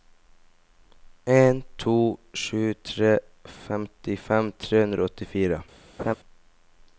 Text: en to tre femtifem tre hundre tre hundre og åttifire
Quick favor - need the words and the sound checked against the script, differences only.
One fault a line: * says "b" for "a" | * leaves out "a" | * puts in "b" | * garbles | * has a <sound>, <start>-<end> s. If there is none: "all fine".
* puts in "sju"
* leaves out "tre hundre"
* has a laugh, 6.0-6.2 s